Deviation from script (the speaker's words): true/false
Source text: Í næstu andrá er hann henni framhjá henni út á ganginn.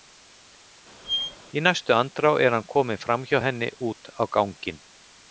true